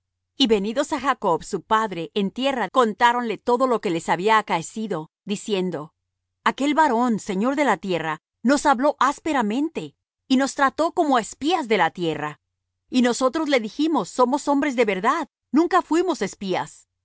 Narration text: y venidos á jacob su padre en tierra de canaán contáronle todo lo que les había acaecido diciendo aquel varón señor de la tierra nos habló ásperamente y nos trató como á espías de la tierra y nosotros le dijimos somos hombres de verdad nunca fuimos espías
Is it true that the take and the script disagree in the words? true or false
true